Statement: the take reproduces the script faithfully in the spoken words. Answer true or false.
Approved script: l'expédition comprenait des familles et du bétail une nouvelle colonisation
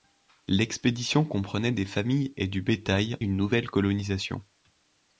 true